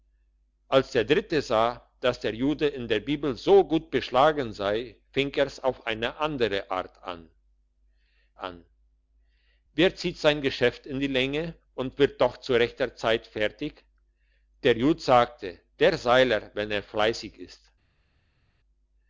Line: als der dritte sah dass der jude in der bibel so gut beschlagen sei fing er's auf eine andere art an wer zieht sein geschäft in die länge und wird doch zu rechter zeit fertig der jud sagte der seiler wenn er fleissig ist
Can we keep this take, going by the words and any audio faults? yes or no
no